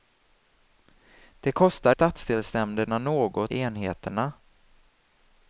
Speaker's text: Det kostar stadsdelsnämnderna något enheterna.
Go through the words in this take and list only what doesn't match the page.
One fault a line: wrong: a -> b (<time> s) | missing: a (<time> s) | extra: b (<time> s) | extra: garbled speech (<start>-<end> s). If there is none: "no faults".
no faults